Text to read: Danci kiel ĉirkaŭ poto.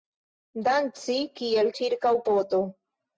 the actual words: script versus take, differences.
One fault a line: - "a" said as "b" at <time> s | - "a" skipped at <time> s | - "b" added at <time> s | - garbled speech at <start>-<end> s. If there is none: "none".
none